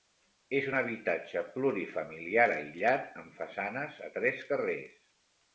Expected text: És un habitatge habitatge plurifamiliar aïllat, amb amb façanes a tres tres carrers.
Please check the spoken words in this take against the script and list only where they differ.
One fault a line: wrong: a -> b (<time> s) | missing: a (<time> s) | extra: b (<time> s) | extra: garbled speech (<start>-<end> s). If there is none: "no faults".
missing: habitatge (1.4 s)
missing: amb (3.4 s)
missing: tres (4.5 s)